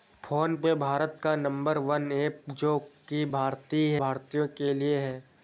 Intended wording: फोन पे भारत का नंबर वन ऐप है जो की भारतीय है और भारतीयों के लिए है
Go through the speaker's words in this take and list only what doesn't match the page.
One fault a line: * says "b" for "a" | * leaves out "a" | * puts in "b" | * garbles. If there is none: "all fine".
* leaves out "है और"